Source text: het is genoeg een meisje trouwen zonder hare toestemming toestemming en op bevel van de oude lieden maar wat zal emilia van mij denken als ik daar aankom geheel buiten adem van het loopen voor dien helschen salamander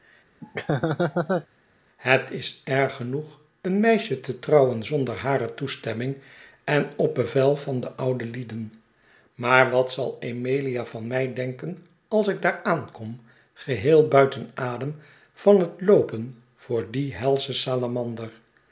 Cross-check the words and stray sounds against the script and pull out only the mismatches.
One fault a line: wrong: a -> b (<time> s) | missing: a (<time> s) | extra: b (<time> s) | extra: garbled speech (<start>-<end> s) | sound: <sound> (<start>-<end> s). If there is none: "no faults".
sound: laugh (0.4-1.5 s)
extra: erg (2.6 s)
extra: te (4.2 s)
missing: toestemming (6.2 s)